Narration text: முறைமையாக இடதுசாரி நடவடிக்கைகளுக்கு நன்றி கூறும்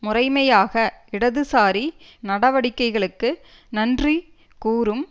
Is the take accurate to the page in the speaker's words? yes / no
yes